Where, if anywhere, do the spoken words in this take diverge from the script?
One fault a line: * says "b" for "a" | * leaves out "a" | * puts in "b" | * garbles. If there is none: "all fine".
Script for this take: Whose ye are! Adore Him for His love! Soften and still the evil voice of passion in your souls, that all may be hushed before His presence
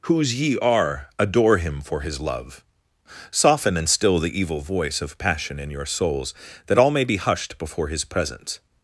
all fine